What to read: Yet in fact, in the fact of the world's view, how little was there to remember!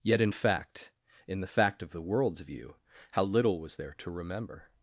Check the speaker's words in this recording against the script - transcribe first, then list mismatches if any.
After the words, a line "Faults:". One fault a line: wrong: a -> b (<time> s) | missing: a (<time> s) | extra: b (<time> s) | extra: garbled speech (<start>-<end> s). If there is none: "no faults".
Yet in fact, in the fact of the world's view, how little was there to remember!
Faults:
no faults